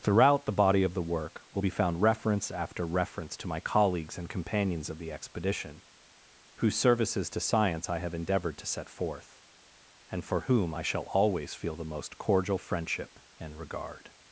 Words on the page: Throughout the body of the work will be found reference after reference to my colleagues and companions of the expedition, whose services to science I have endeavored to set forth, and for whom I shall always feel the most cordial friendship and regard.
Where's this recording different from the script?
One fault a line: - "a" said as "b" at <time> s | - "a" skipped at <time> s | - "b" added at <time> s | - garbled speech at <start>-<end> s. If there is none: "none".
none